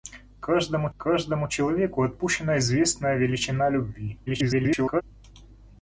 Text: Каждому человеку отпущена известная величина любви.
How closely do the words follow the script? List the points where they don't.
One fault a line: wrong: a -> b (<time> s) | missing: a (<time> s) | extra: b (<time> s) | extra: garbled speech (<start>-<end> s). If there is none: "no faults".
extra: каждому (1.0 s)
extra: garbled speech (4.3-5.0 s)